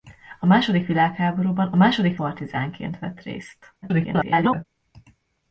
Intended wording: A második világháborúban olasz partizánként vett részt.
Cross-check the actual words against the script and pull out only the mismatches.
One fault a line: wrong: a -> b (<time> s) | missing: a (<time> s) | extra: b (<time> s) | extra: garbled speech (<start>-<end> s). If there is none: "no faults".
wrong: olasz -> második (1.8 s)
extra: garbled speech (3.8-4.6 s)